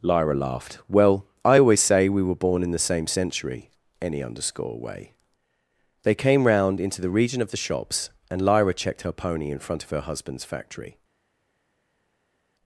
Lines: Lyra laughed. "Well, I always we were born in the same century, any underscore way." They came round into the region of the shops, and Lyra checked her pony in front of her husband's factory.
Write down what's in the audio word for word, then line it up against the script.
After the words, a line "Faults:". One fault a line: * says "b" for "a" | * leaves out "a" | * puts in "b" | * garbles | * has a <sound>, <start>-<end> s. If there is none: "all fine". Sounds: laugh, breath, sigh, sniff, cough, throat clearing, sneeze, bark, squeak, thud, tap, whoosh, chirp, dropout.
Lyra laughed. "Well, I always say we were born in the same century, any underscore way." They came round into the region of the shops, and Lyra checked her pony in front of her husband's factory.
Faults:
* puts in "say"